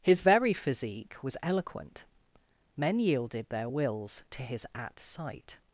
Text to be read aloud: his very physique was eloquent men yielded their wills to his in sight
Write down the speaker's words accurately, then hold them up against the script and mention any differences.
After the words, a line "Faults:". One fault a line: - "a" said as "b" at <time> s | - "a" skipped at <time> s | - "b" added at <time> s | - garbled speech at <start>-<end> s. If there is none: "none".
his very physique was eloquent men yielded their wills to his at sight
Faults:
- "in" said as "at" at 4.7 s